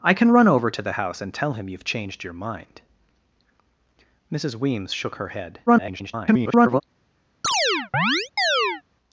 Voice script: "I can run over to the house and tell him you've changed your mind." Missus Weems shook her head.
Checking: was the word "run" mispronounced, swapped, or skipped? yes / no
no